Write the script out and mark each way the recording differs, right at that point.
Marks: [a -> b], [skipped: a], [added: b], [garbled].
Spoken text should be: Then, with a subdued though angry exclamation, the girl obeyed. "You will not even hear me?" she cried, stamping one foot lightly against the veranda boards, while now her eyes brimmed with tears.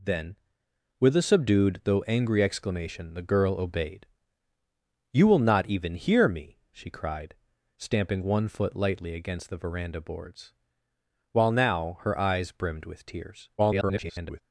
Then, with a subdued though angry exclamation, the girl obeyed. "You will not even hear me?" she cried, stamping one foot lightly against the veranda boards, while now her eyes brimmed with tears. [garbled]